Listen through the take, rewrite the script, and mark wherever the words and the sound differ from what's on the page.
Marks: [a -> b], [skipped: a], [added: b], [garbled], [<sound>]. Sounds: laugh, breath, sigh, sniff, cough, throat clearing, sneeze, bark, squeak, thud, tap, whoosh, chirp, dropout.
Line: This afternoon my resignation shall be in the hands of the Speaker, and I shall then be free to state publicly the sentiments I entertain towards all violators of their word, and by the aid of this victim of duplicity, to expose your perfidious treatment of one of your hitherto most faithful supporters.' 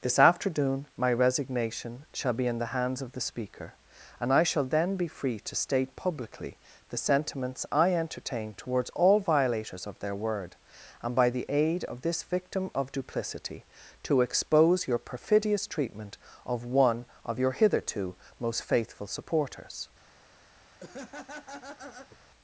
This afternoon my resignation shall be in the hands of the Speaker, and I shall then be free to state publicly the sentiments I entertain towards all violators of their word, and by the aid of this victim of duplicity, to expose your perfidious treatment of one of your hitherto most faithful supporters.' [laugh]